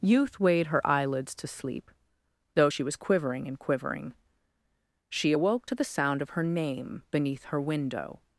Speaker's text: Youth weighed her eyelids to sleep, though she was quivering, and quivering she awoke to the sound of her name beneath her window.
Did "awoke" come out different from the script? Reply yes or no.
no